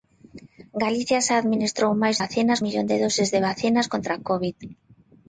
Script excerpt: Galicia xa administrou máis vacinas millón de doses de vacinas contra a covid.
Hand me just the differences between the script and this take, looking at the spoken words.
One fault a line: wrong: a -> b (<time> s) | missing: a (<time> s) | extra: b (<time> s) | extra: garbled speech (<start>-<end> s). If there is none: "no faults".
no faults